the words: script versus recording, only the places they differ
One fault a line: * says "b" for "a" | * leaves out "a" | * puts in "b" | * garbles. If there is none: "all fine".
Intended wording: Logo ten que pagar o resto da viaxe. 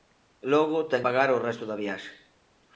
* leaves out "que"